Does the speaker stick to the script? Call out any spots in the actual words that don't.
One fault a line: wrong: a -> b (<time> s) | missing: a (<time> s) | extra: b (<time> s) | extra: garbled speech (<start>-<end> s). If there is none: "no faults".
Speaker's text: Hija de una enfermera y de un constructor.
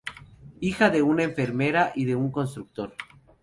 no faults